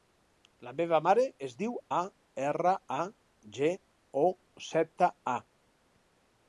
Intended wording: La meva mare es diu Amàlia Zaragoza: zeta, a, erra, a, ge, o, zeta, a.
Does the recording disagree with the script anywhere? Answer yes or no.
yes